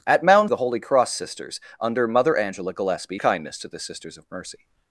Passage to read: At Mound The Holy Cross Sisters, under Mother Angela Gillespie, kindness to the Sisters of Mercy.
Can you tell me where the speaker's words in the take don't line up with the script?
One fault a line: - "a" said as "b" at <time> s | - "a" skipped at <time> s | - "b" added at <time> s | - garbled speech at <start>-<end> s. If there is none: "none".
none